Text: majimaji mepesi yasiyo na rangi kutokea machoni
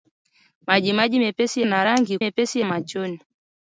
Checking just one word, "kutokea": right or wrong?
wrong